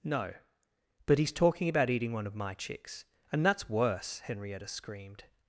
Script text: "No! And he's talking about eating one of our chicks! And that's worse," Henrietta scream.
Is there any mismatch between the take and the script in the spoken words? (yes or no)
yes